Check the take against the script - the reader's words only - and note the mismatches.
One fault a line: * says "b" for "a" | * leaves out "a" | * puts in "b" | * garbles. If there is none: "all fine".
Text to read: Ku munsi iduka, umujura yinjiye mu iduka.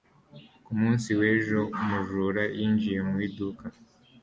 * says "w'ejo" for "iduka"